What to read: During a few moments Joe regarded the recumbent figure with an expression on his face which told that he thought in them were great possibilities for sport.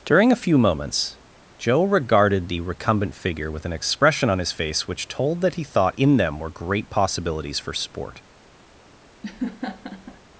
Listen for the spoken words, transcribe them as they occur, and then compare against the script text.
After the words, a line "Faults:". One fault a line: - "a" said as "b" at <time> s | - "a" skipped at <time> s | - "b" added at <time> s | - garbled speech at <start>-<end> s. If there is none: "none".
During a few moments Joe regarded the recumbent figure with an expression on his face which told that he thought in them were great possibilities for sport.
Faults:
none